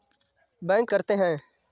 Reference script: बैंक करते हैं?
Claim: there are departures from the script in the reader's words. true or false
false